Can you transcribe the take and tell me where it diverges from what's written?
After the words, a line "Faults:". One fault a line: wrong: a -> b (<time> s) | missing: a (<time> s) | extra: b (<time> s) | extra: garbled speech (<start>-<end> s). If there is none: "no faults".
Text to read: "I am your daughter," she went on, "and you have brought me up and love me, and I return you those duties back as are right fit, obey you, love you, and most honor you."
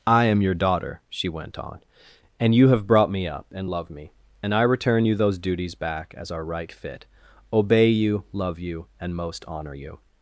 "I am your daughter," she went on, "and you have brought me up and love me, and I return you those duties back as are right fit, obey you, love you, and most honor you."
Faults:
no faults